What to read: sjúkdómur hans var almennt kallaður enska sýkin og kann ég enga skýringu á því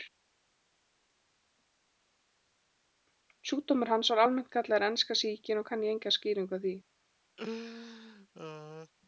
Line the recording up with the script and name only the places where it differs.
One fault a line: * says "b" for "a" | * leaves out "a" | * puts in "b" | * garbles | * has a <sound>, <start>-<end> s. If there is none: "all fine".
* has a laugh, 7.4-8.9 s